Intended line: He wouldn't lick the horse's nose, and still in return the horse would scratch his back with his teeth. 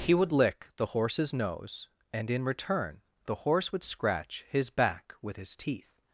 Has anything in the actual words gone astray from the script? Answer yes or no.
yes